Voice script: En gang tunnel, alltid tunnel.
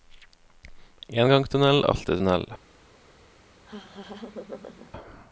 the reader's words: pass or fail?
pass